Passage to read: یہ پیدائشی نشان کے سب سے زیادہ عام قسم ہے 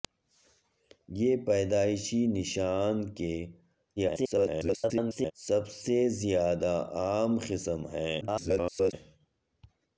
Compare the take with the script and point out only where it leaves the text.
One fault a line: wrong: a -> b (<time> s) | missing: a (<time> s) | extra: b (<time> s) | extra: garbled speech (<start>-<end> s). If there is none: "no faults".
extra: garbled speech (4.0-5.3 s)
extra: garbled speech (8.2-8.9 s)